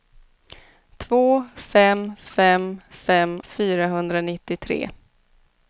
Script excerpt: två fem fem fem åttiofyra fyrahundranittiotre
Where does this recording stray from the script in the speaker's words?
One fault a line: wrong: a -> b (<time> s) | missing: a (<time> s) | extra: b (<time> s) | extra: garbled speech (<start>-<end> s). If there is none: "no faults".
missing: åttiofyra (3.4 s)